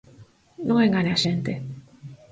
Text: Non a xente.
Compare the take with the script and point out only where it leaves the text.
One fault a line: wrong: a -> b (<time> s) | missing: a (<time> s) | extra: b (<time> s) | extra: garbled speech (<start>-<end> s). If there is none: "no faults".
extra: engane (0.8 s)